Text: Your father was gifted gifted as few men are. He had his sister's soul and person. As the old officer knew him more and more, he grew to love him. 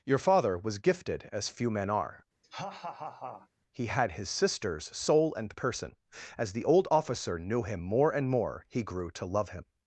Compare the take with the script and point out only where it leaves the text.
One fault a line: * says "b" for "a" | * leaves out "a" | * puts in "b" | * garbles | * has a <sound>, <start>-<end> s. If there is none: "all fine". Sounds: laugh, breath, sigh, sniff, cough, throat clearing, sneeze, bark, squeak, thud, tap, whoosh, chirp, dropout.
* leaves out "gifted"
* has a laugh, 2.4-3.5 s